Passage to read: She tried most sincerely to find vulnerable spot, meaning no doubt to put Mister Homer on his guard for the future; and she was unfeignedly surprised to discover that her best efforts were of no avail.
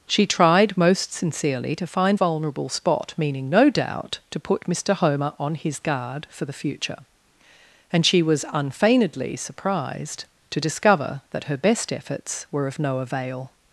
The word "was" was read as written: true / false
true